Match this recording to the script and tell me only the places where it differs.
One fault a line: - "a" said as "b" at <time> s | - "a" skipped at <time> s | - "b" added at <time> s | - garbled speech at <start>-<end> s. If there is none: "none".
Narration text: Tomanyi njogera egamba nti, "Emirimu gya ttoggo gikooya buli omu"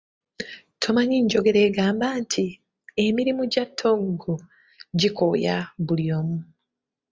none